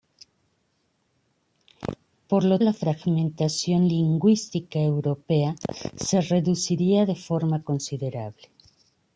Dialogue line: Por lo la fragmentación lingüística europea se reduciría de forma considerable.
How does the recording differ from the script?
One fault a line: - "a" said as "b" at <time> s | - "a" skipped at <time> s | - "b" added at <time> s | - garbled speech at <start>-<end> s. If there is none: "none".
none